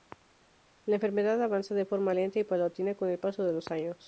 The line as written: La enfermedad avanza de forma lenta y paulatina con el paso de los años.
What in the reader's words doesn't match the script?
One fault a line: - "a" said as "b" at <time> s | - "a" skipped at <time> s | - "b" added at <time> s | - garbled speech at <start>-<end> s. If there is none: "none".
none